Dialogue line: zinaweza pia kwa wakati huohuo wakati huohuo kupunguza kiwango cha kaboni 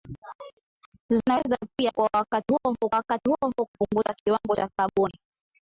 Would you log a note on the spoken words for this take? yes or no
no